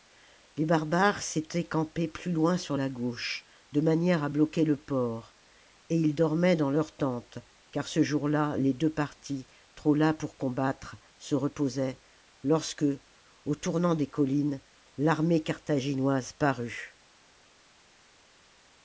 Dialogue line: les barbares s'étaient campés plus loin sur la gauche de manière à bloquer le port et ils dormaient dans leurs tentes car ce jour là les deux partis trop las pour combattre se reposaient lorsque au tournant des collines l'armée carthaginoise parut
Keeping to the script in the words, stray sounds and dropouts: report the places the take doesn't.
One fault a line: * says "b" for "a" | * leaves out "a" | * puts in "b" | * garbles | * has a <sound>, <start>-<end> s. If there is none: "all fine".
all fine